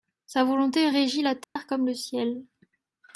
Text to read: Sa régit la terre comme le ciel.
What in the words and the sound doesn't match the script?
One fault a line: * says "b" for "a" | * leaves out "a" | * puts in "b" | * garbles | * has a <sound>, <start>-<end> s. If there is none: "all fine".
* puts in "volonté"
* has a dropout, 1.4-1.6 s